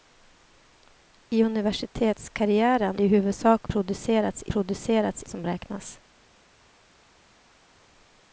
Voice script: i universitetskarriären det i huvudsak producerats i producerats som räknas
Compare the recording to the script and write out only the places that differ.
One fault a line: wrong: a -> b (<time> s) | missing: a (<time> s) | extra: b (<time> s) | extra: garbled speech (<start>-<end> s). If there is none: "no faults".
no faults